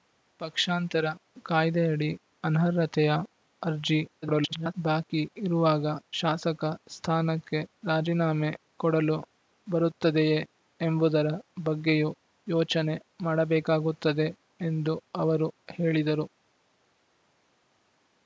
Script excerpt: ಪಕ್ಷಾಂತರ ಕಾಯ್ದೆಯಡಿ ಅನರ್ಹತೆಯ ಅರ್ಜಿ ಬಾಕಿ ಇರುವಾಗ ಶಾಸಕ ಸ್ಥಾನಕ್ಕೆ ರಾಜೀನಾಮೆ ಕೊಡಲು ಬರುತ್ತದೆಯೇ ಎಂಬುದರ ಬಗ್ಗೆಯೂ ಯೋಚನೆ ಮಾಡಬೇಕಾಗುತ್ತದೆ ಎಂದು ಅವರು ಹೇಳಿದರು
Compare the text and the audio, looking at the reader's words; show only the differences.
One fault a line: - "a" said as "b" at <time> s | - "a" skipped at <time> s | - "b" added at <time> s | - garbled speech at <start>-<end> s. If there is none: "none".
- garbled speech at 4.2-4.7 s